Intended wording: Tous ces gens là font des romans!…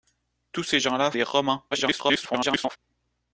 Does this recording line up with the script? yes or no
no